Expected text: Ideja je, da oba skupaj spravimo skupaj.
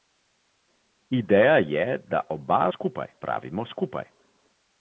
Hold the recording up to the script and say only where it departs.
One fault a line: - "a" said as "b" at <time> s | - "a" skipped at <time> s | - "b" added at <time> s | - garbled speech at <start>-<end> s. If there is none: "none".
none